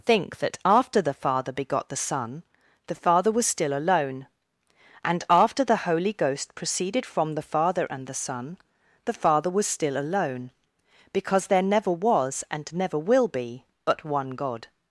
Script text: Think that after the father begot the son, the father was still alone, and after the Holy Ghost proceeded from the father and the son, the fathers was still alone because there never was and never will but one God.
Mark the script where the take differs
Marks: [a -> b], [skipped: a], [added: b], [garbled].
Think that after the father begot the son, the father was still alone, and after the Holy Ghost proceeded from the father and the son, the [fathers -> father] was still alone because there never was and never will [added: be] but one God.